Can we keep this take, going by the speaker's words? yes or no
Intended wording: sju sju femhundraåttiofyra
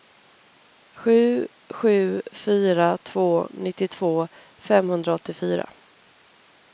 no